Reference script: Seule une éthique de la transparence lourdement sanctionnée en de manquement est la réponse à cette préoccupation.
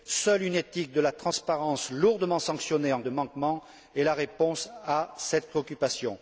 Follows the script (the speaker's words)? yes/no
yes